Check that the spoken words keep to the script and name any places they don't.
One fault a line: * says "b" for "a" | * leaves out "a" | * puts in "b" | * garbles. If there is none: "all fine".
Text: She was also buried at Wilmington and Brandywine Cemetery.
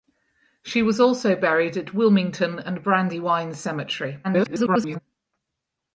* garbles